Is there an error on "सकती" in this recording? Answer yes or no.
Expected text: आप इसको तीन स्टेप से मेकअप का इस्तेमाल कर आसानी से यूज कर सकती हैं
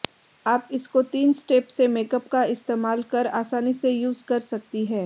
no